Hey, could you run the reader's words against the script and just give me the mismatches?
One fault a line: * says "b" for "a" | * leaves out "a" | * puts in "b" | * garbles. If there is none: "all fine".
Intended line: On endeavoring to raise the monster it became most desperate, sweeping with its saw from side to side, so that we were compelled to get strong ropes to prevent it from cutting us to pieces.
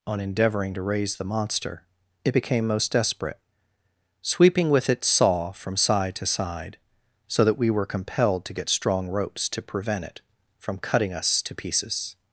all fine